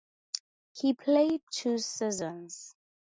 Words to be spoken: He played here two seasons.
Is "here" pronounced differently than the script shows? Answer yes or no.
yes